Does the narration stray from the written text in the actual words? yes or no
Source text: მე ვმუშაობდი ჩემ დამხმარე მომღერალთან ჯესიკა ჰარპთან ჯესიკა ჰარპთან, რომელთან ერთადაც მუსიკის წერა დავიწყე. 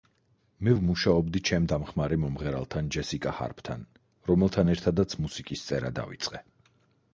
yes